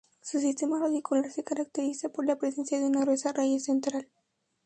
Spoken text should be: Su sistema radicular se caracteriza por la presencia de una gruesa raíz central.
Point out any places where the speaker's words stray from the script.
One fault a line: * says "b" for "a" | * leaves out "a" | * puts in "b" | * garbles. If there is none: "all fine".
all fine